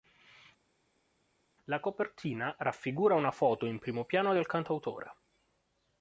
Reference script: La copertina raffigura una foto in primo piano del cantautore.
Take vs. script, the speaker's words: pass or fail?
pass